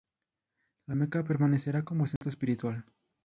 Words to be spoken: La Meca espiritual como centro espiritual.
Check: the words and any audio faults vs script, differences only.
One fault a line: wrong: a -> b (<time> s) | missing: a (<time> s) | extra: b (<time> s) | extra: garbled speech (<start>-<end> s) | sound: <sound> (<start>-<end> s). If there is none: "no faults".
wrong: espiritual -> permanecerá (1.2 s)
sound: dropout (2.2-2.2 s)